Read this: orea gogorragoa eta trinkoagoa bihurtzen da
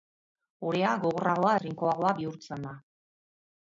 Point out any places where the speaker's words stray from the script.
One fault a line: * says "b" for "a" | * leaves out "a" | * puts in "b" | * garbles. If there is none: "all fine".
* leaves out "eta"